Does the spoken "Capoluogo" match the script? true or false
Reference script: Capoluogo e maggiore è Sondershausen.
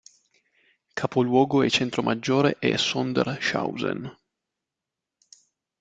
true